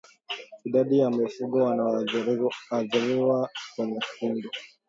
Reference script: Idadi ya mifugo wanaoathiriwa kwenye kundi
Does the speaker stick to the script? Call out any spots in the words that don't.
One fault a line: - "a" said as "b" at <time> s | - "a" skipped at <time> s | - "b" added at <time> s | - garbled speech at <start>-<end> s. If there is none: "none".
none